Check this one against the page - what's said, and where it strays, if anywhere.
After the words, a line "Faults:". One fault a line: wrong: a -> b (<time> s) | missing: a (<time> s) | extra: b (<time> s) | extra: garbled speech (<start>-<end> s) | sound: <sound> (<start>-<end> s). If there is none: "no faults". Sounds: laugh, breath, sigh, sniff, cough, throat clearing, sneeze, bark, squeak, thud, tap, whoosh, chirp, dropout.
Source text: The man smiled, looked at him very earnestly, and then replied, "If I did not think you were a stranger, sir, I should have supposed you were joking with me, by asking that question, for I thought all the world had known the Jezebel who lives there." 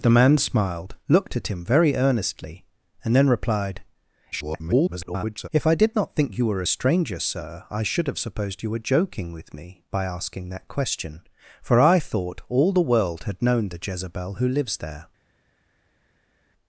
The man smiled, looked at him very earnestly, and then replied, [garbled] "If I did not think you were a stranger, sir, I should have supposed you were joking with me, by asking that question, for I thought all the world had known the Jezebel who lives there."
Faults:
extra: garbled speech (4.3-5.5 s)